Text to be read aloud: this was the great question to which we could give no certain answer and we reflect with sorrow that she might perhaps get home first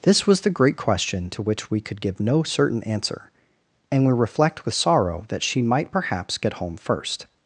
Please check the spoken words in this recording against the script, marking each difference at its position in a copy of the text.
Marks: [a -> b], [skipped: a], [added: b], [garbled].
this was the great question to which we could give no certain answer and we reflect with sorrow that she might perhaps get home first